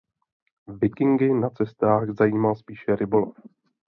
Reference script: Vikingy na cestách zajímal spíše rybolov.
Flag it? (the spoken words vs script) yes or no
no